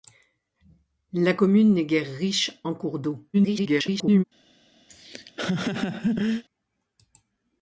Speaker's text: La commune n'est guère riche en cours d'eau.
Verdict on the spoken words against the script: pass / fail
fail